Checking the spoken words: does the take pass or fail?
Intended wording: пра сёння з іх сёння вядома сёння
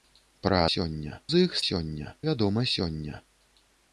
pass